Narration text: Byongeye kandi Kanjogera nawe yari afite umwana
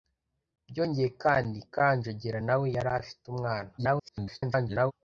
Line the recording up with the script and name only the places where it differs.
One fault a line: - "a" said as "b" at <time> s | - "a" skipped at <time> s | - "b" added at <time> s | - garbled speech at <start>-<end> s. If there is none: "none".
- garbled speech at 3.8-4.9 s